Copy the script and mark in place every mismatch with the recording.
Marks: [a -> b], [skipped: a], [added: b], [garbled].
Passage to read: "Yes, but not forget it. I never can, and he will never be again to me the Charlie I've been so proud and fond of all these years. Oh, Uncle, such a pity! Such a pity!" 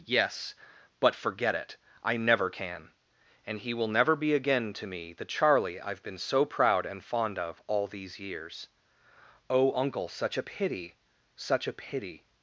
"Yes, but [skipped: not] forget it. I never can, and he will never be again to me the Charlie I've been so proud and fond of all these years. Oh, Uncle, such a pity! Such a pity!"